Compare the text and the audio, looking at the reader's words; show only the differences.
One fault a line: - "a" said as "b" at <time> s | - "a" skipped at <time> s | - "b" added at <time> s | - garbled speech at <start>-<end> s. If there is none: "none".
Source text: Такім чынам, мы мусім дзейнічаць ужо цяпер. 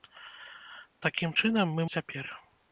- "мусім дзейнічаць ужо" skipped at 1.8 s